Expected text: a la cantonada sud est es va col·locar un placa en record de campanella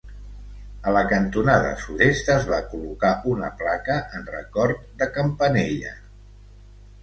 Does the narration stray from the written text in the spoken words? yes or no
yes